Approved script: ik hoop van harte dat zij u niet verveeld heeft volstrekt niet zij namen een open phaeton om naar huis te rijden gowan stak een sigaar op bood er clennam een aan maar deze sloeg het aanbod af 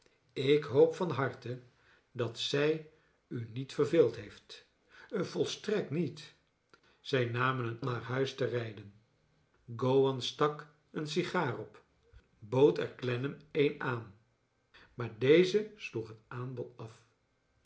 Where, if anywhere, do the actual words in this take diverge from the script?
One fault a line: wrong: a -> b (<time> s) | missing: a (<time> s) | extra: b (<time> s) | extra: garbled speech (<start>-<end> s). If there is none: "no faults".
missing: open phaeton om (7.8 s)